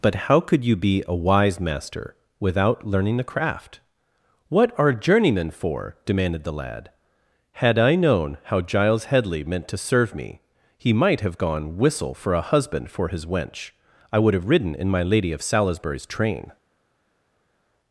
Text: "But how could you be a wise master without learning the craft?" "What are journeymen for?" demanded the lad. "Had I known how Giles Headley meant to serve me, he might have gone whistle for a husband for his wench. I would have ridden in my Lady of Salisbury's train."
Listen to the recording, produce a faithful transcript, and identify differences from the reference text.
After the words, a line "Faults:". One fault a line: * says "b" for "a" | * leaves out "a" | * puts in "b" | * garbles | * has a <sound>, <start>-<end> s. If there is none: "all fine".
"But how could you be a wise master without learning the craft?" "What are journeymen for?" demanded the lad. "Had I known how Giles Headley meant to serve me, he might have gone whistle for a husband for his wench. I would have ridden in my Lady of Salisbury's train."
Faults:
all fine